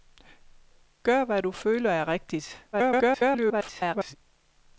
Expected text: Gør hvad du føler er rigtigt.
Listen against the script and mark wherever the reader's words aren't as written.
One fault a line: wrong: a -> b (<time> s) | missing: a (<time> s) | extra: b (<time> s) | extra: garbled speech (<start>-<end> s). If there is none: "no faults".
extra: garbled speech (2.7-4.2 s)